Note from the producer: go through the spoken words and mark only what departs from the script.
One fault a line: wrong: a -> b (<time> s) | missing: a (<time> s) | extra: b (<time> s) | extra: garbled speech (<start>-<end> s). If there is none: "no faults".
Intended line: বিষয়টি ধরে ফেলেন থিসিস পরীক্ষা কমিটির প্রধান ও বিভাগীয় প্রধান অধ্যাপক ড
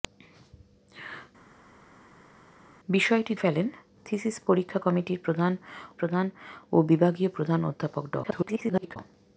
missing: ধরে (3.3 s)
extra: প্রধান (5.9 s)
extra: garbled speech (8.2-9.0 s)